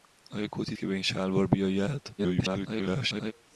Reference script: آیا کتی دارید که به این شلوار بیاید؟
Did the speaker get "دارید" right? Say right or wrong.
wrong